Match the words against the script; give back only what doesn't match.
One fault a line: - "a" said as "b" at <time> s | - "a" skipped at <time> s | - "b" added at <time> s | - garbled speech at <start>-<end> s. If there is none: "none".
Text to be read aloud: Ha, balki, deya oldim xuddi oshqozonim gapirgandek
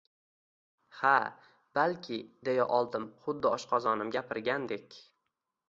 none